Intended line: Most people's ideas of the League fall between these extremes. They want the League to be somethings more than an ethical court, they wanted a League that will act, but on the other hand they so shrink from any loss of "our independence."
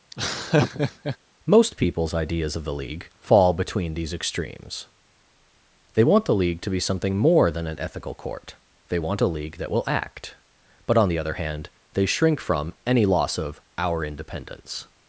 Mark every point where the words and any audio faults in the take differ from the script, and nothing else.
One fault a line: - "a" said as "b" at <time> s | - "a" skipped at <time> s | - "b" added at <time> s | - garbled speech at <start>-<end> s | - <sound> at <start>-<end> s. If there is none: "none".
- laugh at 0.1-1.2 s
- "somethings" said as "something" at 6.8 s
- "wanted" said as "want" at 9.0 s
- "so" skipped at 12.1 s